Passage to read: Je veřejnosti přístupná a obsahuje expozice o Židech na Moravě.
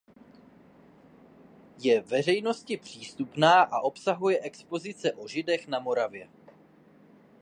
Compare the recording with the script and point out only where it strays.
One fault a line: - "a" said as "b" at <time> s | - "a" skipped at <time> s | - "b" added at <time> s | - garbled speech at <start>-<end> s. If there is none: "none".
none